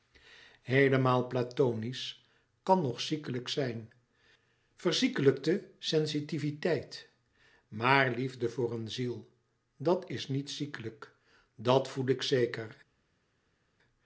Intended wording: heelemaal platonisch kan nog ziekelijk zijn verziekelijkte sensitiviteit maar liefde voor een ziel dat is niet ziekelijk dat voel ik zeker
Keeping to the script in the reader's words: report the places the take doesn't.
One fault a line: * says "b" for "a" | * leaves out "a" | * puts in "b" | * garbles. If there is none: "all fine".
all fine